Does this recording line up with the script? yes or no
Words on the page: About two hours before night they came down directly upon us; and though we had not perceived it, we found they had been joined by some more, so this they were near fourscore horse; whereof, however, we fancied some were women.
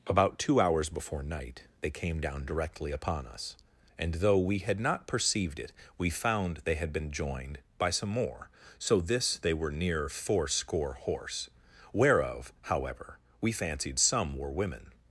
yes